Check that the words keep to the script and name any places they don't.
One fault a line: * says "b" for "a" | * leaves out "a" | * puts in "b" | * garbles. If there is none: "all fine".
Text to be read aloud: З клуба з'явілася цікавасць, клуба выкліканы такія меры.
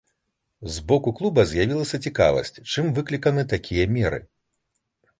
* puts in "боку"
* says "чым" for "клуба"